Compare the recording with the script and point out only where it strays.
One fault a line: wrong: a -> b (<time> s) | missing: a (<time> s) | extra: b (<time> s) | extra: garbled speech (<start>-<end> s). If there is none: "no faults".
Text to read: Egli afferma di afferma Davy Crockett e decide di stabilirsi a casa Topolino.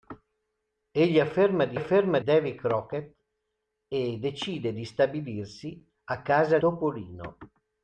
no faults